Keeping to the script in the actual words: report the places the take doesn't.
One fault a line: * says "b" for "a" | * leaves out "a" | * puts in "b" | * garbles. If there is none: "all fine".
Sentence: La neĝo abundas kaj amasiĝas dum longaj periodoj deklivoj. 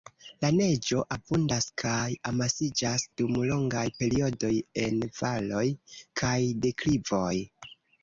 * puts in "en valoj kaj"